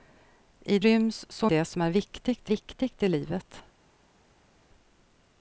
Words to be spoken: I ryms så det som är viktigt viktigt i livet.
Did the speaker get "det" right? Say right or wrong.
right